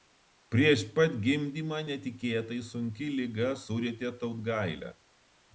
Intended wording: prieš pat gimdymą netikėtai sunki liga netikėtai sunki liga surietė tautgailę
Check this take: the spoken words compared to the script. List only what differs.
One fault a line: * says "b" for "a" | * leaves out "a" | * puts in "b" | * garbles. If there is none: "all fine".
* leaves out "netikėtai sunki liga"